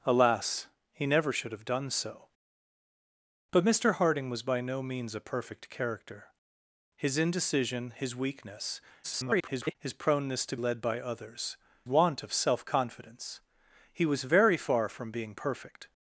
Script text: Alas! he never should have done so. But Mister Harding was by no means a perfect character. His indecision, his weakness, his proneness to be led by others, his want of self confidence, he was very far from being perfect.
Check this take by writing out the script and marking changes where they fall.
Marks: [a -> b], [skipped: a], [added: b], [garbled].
Alas! he never should have done so. But Mister Harding was by no means a perfect character. His indecision, his weakness, [garbled] his proneness to [skipped: be] led by others, [skipped: his] want of self confidence, he was very far from being perfect.